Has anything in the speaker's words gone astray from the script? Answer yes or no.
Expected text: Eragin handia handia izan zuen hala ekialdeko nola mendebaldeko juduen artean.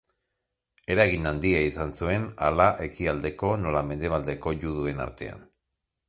yes